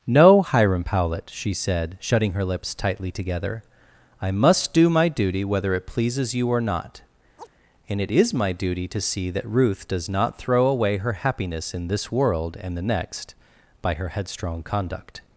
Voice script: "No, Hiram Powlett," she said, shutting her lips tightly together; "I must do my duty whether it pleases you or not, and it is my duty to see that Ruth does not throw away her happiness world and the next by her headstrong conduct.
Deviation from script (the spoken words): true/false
true